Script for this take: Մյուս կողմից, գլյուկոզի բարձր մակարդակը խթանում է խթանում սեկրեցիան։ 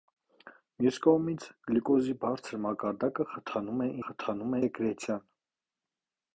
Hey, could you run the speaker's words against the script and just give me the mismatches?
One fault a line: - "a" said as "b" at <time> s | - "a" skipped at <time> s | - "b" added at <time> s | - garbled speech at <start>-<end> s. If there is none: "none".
none